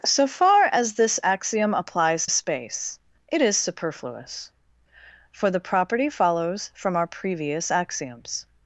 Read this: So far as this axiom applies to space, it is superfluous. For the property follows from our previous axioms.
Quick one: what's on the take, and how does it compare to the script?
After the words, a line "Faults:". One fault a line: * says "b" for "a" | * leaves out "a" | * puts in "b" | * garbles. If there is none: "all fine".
So far as this axiom applies space, it is superfluous. For the property follows from our previous axioms.
Faults:
* leaves out "to"